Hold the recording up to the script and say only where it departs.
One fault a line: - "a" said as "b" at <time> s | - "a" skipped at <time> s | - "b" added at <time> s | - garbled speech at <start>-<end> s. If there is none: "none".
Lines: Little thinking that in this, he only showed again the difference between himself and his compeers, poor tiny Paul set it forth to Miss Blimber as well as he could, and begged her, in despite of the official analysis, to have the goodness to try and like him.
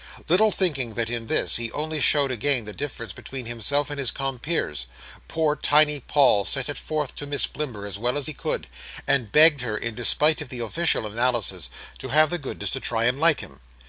none